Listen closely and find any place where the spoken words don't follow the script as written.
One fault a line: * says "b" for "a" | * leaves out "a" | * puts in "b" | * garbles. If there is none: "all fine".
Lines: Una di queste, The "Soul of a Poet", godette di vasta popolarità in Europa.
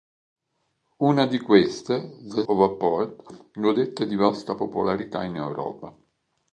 * leaves out "Soul"